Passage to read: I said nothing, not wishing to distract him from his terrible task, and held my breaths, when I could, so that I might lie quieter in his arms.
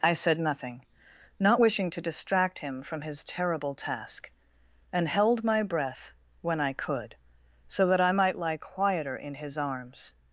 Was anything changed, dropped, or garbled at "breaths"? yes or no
yes